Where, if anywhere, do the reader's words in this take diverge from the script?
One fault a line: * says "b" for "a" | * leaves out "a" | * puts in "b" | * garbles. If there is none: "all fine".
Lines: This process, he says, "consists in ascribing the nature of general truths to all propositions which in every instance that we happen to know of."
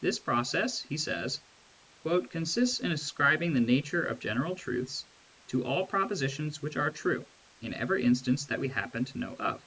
* puts in "are true"